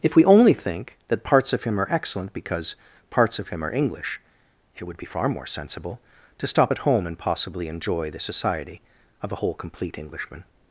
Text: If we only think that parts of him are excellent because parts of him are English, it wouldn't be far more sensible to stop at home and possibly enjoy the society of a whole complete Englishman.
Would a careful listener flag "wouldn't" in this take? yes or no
yes